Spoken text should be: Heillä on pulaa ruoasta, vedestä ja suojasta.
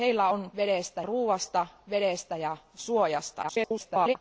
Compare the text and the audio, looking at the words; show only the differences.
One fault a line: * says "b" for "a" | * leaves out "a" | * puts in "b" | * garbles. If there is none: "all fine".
* says "vedestä" for "pulaa"
* garbles